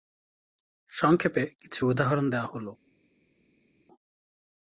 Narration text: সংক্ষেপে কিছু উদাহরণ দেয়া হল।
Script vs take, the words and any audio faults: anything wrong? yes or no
no